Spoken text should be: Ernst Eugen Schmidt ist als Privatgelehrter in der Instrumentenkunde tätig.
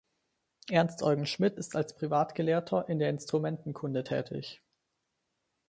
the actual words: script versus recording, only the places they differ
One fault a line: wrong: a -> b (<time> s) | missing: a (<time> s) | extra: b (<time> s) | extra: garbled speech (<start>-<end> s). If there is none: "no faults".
no faults